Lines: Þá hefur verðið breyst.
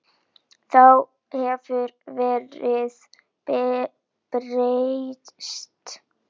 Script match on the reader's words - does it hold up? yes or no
yes